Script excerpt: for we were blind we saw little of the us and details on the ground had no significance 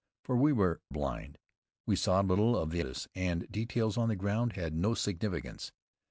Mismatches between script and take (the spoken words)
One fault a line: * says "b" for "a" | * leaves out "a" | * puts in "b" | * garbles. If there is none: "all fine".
all fine